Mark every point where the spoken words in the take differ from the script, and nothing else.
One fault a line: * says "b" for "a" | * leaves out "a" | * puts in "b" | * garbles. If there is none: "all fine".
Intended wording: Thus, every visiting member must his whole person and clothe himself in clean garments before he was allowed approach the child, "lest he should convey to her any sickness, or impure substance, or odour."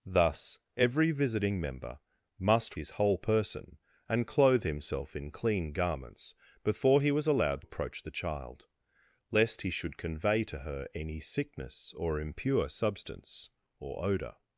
all fine